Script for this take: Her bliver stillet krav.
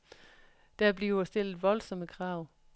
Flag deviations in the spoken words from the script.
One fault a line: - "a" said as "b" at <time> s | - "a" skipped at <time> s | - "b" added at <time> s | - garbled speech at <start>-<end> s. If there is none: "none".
- "Her" said as "Der" at 0.8 s
- "voldsomme" added at 1.6 s